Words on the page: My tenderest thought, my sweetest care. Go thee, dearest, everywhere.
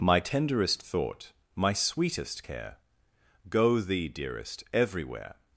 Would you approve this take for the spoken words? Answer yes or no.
yes